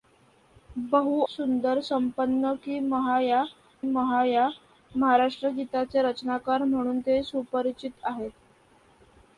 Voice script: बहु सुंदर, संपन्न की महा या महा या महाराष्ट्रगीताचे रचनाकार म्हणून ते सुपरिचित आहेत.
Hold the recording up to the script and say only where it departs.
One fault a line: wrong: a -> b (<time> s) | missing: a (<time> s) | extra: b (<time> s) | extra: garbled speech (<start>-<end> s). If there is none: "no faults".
no faults